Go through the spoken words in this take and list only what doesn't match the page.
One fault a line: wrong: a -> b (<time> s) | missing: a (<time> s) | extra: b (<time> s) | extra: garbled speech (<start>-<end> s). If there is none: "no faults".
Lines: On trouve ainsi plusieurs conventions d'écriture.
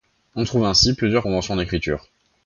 no faults